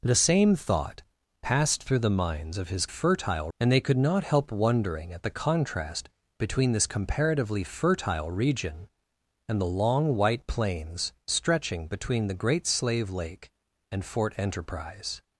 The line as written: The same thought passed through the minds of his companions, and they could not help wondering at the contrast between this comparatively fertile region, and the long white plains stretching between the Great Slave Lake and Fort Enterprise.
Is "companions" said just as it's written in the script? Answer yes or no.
no